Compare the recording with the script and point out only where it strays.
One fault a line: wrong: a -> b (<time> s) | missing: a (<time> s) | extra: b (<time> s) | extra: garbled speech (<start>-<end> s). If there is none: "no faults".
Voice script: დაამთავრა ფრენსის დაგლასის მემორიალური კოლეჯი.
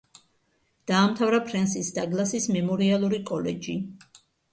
no faults